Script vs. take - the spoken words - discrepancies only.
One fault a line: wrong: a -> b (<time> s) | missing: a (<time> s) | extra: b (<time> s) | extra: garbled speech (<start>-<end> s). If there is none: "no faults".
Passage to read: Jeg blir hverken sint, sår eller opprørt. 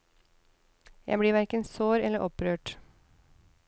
missing: sint (1.6 s)